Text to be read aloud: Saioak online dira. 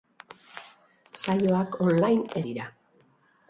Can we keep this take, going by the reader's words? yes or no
yes